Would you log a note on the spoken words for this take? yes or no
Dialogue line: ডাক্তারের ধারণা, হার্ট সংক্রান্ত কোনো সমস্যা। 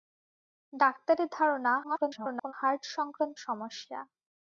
yes